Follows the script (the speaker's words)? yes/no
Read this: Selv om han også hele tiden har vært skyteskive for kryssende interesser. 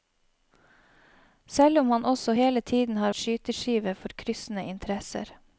no